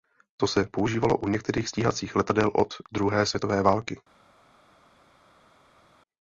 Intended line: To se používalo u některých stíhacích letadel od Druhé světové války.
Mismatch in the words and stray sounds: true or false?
false